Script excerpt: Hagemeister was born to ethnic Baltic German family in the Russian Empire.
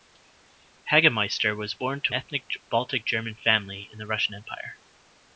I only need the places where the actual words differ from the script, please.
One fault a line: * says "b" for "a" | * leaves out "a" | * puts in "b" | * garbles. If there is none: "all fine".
all fine